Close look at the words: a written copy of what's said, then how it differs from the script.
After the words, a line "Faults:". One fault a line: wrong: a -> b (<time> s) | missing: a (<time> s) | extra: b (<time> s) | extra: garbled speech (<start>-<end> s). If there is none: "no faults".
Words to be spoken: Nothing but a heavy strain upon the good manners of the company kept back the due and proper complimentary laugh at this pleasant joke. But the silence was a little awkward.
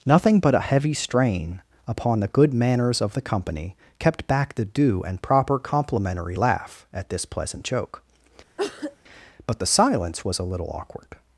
Nothing but a heavy strain upon the good manners of the company kept back the due and proper complimentary laugh at this pleasant joke. But the silence was a little awkward.
Faults:
no faults